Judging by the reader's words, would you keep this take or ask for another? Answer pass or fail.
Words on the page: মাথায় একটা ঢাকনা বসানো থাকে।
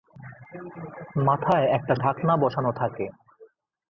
pass